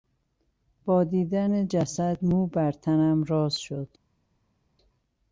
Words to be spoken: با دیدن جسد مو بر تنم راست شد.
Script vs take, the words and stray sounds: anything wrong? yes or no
no